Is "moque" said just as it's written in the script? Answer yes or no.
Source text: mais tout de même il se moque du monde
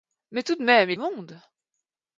no